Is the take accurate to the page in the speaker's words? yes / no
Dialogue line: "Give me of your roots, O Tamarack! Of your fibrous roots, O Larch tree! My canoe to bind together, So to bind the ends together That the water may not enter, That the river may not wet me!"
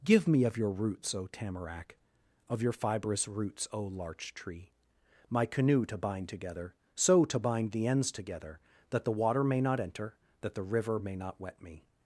yes